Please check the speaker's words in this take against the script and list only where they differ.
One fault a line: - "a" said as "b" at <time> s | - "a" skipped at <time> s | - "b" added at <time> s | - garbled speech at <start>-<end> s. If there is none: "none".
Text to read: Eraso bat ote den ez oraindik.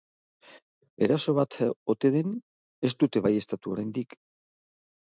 - "dute baieztatu" added at 3.0 s